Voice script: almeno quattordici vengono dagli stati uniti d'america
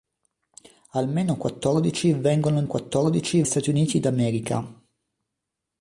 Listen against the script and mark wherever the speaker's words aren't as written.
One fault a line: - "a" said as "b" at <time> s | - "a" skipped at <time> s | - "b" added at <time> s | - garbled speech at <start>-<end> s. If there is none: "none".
- "dagli" said as "quattordici" at 2.6 s